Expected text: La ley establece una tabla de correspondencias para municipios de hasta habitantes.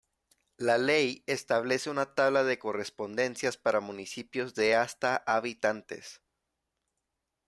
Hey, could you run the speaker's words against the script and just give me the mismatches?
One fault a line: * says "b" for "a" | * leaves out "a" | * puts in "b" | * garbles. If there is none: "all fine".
all fine